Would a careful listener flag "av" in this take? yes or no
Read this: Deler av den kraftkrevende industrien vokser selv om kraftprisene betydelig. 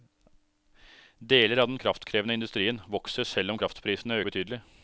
no